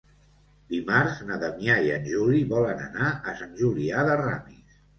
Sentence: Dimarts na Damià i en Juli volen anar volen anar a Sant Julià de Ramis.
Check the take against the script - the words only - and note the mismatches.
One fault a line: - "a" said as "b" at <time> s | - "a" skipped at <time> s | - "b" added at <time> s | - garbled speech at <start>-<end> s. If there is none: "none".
- "volen anar" skipped at 3.2 s